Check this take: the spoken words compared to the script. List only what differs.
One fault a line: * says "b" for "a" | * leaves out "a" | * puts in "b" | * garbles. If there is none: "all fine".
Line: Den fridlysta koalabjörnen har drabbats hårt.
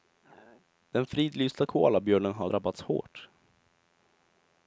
all fine